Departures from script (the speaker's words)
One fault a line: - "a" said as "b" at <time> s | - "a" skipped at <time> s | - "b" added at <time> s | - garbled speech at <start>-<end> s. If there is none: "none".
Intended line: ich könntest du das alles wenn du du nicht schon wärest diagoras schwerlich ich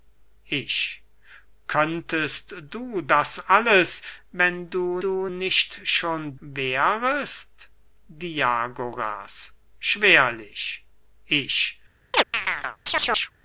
none